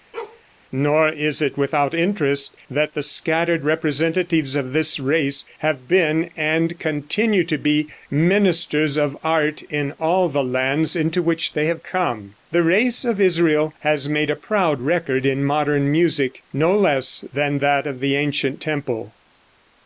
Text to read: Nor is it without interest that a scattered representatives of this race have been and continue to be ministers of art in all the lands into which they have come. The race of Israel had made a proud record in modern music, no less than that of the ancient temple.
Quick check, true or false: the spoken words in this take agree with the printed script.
false